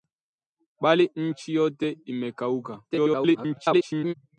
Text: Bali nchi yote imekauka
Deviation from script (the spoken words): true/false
true